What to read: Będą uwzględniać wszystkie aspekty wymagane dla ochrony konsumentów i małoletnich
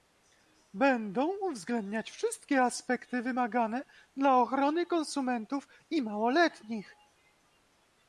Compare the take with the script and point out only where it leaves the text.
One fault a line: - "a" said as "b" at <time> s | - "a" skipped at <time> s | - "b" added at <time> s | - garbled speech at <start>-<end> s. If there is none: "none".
none